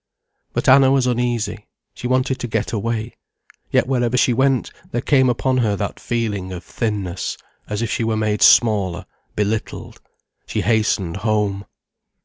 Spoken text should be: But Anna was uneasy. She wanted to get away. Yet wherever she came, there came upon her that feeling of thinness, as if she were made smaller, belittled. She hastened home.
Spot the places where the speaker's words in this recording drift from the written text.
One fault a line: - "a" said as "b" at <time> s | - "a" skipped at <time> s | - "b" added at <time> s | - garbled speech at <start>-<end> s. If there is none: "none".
- "came" said as "went" at 4.3 s